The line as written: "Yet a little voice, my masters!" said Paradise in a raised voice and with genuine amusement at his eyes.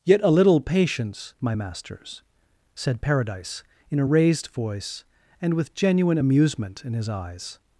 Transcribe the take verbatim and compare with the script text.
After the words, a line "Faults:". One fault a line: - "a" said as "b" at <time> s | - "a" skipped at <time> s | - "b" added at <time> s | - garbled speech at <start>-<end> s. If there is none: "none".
"Yet a little patience, my masters!" said Paradise in a raised voice and with genuine amusement in his eyes.
Faults:
- "voice" said as "patience" at 0.6 s
- "at" said as "in" at 6.8 s